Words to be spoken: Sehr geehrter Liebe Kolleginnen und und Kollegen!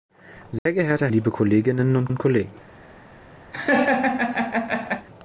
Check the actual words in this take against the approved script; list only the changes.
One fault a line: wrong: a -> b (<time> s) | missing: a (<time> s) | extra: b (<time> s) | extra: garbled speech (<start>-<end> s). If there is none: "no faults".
no faults